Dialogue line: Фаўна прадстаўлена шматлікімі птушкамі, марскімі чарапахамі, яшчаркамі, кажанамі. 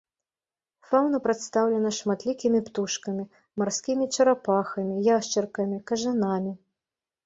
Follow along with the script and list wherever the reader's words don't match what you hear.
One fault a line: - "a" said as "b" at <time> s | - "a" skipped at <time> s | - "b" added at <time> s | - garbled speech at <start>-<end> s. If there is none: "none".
none